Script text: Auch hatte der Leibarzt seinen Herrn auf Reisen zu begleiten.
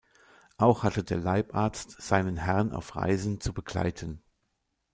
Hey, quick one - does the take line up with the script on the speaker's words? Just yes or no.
yes